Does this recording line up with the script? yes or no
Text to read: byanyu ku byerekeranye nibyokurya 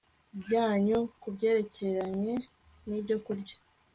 yes